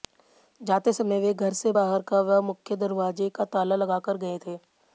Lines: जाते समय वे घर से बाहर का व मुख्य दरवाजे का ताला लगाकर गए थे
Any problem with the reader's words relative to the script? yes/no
no